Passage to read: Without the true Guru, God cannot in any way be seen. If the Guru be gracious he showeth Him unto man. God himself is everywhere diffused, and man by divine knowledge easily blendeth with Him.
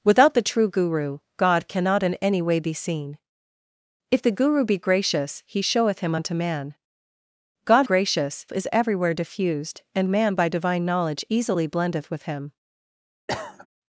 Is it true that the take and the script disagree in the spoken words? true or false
true